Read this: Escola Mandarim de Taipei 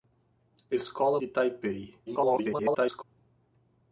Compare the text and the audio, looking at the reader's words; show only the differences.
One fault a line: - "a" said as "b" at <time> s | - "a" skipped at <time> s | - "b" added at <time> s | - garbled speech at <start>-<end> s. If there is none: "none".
- "Mandarim" skipped at 1.2 s
- garbled speech at 2.1-3.0 s